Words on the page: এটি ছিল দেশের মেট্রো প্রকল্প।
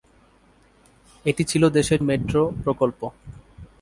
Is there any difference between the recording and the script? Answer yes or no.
no